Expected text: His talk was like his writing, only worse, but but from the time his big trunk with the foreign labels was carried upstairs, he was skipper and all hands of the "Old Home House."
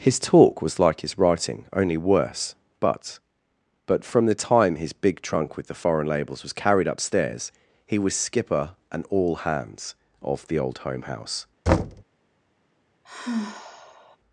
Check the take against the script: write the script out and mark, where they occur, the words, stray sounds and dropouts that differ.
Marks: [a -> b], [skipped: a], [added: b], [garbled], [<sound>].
His talk was like his writing, only worse, but but from the time his big trunk with the foreign labels was carried upstairs, he was skipper and all hands of the "Old Home House." [thud] [sigh]